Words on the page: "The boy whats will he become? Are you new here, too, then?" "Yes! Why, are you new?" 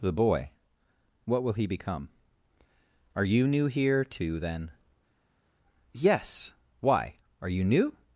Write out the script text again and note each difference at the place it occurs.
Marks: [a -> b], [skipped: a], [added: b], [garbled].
"The boy [whats -> what] will he become? Are you new here, too, then?" "Yes! Why, are you new?"